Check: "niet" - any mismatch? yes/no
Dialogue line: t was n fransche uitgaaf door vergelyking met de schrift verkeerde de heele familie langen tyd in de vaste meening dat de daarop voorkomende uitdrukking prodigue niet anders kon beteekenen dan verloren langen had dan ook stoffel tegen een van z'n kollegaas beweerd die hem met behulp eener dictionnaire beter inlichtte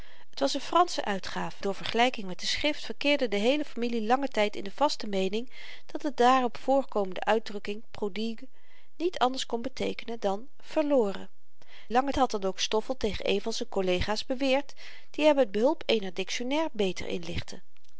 no